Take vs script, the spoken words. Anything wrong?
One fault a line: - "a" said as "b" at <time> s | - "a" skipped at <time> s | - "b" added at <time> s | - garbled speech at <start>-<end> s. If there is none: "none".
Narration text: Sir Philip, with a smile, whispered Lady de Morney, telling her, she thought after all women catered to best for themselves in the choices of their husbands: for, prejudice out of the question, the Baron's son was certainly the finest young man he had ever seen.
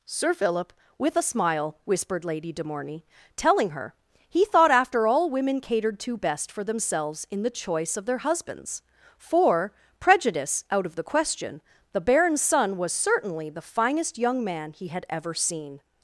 - "she" said as "he" at 4.3 s
- "choices" said as "choice" at 7.5 s